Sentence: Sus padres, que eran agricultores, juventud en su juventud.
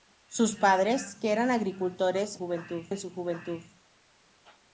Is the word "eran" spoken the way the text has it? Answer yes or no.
yes